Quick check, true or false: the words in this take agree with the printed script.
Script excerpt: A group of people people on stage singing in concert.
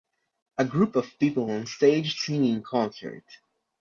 false